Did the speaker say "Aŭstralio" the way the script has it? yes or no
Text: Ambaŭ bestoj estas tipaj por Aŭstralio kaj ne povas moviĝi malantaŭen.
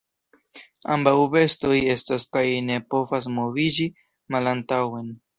no